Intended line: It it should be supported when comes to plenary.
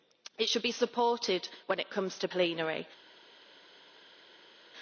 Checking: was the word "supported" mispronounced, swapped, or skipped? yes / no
no